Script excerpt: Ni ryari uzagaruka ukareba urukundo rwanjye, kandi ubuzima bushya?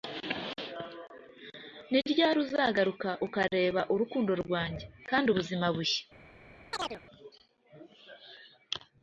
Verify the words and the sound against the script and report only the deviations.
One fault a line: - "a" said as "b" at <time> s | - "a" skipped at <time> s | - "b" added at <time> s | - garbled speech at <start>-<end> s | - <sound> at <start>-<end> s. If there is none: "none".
- chirp at 6.7-7.0 s